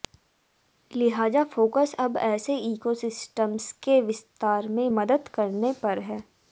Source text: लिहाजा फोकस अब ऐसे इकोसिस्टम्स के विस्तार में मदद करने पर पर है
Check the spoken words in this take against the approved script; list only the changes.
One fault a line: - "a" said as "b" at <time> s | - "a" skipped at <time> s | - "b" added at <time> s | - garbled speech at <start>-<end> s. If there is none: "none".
- "पर" skipped at 6.0 s